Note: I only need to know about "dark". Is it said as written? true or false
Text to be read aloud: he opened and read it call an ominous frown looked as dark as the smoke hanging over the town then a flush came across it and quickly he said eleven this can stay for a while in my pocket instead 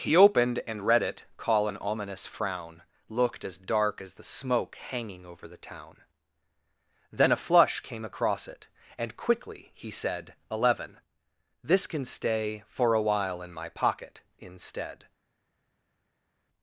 true